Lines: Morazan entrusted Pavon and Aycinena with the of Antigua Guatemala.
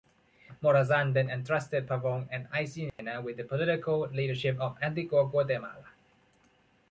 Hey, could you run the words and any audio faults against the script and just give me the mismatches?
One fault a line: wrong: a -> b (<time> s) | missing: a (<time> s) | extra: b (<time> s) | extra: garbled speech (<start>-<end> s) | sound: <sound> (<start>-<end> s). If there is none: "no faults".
extra: then (1.1 s)
sound: dropout (2.9-3.0 s)
extra: political leadership (3.4 s)